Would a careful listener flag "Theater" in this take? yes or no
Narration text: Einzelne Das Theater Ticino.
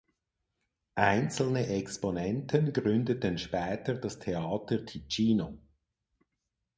no